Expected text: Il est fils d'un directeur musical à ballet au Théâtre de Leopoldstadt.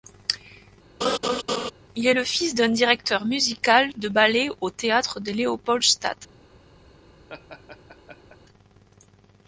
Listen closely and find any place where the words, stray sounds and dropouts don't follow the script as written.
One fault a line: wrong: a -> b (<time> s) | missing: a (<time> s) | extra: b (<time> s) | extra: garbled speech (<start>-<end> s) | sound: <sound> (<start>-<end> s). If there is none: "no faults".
sound: laugh (1.0-1.7 s)
extra: le (2.1 s)
wrong: à -> de (4.0 s)
sound: laugh (7.3-8.4 s)